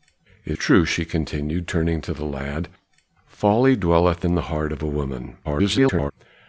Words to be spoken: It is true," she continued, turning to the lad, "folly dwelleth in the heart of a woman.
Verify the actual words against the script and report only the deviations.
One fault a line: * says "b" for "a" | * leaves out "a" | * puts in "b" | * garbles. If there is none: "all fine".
* leaves out "is"
* garbles